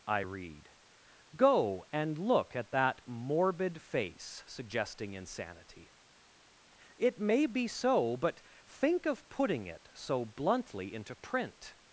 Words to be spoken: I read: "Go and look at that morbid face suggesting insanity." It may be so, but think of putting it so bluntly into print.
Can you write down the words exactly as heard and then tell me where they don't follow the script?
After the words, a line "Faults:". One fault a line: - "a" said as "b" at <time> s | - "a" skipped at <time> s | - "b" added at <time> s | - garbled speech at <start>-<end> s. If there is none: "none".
I read: "Go and look at that morbid face suggesting insanity." It may be so, but think of putting it so bluntly into print.
Faults:
none